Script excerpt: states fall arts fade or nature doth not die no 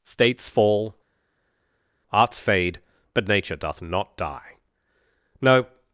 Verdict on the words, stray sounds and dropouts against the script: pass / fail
fail